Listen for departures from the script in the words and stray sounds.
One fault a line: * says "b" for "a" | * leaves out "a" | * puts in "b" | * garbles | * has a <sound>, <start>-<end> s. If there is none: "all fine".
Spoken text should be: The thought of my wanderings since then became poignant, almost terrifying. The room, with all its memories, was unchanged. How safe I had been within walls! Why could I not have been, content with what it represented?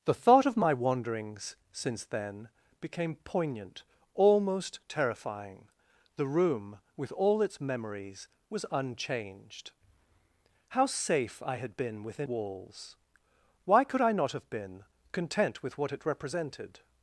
all fine